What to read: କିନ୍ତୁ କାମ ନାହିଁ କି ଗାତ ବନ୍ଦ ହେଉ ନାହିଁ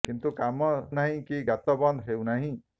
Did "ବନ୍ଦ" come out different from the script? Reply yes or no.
no